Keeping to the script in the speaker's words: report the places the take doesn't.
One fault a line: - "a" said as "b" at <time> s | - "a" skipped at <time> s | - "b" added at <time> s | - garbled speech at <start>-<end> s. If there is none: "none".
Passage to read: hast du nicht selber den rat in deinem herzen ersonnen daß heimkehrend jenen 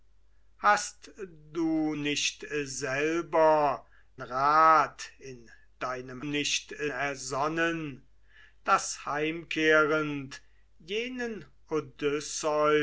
- "den" skipped at 3.9 s
- "herzen" said as "nicht" at 6.2 s